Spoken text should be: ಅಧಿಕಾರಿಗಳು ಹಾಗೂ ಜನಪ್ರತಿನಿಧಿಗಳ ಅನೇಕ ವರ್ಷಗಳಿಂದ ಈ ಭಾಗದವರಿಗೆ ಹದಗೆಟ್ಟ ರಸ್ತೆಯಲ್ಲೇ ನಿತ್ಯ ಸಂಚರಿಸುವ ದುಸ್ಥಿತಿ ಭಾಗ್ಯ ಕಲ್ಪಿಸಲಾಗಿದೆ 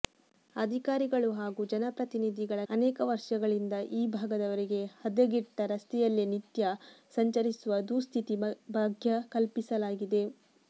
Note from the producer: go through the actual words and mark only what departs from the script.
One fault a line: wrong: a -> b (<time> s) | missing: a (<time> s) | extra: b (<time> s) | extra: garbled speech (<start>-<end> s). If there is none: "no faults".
no faults